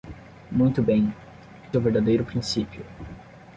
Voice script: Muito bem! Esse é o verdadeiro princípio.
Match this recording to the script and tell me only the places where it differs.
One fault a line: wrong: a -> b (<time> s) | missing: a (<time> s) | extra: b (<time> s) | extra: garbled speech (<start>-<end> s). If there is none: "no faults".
missing: Esse (1.1 s)